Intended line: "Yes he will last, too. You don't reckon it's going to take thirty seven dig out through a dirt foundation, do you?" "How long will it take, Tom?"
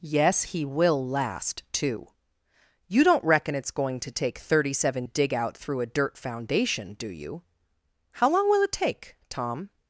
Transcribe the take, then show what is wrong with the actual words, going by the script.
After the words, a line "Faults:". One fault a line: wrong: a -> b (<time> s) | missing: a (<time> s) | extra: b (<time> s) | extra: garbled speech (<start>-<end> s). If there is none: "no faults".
"Yes he will last, too. You don't reckon it's going to take thirty seven dig out through a dirt foundation, do you?" "How long will it take, Tom?"
Faults:
no faults